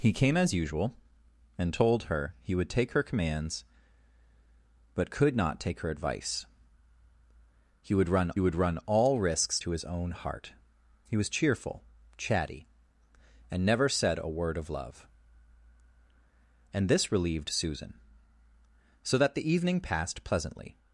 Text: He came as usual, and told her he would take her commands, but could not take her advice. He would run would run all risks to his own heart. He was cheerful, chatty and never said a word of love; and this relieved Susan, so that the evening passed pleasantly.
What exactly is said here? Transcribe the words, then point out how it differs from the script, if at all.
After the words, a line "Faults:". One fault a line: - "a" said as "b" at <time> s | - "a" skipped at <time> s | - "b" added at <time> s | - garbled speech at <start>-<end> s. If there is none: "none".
He came as usual, and told her he would take her commands, but could not take her advice. He would run would run all risks to his own heart. He was cheerful, chatty and never said a word of love; and this relieved Susan, so that the evening passed pleasantly.
Faults:
none